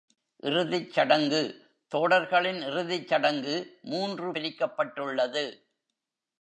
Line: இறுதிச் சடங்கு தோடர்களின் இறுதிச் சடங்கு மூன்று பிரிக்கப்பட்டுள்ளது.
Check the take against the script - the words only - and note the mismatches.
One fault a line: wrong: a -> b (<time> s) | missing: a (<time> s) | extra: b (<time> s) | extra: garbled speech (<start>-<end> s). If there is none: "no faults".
no faults